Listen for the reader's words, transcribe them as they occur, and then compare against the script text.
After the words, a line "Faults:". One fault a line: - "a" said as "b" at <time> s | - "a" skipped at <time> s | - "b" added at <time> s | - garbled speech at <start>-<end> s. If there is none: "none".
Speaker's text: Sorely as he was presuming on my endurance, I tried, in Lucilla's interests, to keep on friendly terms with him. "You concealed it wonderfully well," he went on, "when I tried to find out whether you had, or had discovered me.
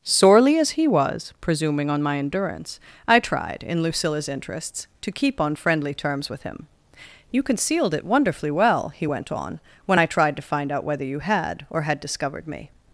Sorely as he was presuming on my endurance, I tried, in Lucilla's interests, to keep on friendly terms with him. "You concealed it wonderfully well," he went on, "when I tried to find out whether you had, or had discovered me.
Faults:
none